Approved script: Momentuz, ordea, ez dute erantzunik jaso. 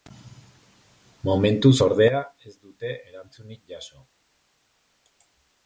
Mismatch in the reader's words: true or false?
false